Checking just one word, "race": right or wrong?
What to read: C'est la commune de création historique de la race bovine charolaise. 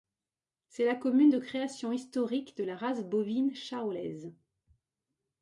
right